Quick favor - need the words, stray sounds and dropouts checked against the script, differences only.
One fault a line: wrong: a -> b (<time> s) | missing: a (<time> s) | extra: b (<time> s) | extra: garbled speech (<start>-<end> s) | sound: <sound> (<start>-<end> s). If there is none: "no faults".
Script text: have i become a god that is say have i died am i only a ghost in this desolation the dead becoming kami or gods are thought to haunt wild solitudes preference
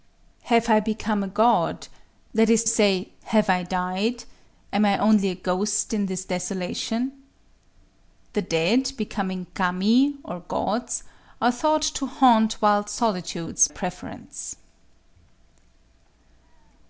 no faults